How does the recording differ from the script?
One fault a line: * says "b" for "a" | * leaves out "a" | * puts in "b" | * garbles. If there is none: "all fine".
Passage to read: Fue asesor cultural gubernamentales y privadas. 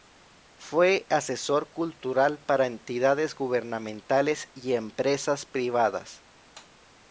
* puts in "para entidades"
* puts in "empresas"